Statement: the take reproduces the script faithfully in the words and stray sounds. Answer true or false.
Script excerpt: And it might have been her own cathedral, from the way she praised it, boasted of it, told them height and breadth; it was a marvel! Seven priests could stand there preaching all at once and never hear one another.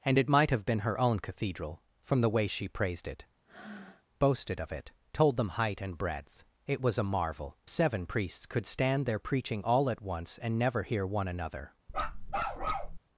false